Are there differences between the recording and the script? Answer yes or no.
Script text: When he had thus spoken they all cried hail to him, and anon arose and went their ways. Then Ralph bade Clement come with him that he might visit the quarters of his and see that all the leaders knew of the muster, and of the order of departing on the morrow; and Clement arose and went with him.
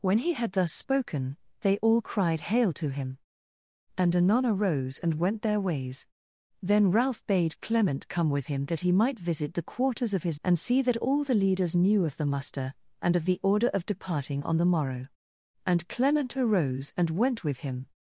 no